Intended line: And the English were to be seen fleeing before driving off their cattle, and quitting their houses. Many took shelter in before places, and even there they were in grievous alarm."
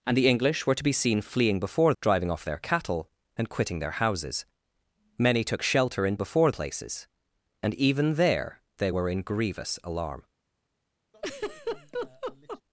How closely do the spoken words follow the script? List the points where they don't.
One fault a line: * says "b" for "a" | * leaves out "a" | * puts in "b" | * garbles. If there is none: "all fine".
all fine